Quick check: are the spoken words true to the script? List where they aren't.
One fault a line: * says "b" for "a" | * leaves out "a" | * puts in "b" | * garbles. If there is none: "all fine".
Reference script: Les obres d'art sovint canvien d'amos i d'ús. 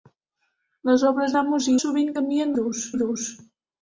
* says "d'amos" for "d'art"
* says "d'ús" for "d'amos"